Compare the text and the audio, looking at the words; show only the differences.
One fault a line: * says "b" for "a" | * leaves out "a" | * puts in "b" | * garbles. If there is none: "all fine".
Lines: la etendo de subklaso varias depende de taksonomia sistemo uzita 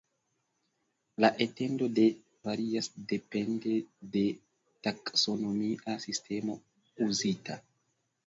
* leaves out "subklaso"